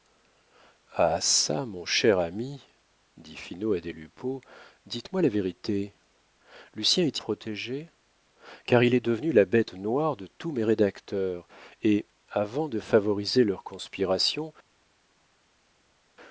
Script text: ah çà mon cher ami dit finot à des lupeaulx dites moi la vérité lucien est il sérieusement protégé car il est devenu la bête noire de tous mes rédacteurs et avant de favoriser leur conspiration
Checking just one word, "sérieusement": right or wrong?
wrong